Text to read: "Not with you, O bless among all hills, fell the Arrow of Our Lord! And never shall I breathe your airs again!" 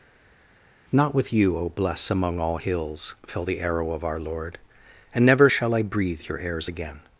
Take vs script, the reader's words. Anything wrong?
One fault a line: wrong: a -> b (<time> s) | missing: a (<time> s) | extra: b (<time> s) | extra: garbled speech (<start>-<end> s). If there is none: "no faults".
no faults